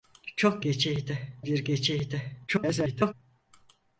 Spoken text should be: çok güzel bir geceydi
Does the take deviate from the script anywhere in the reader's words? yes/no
yes